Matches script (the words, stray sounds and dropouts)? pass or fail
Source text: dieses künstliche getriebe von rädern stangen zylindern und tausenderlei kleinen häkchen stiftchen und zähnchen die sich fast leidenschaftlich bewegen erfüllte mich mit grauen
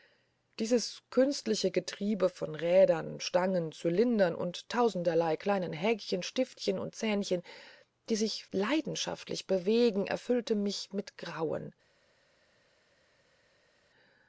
fail